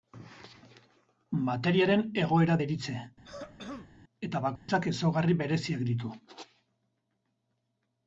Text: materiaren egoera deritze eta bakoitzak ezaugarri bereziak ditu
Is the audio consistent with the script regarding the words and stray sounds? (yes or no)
no